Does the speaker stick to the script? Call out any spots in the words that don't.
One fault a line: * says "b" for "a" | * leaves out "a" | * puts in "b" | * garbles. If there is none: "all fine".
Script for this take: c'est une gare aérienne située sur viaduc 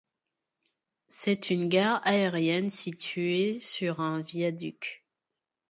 * puts in "un"